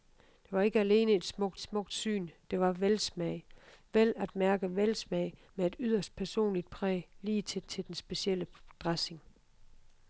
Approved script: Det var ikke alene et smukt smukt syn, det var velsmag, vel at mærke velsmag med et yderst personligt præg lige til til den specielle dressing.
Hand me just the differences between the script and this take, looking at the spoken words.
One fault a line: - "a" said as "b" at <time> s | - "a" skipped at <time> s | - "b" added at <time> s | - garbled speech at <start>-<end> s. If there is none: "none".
none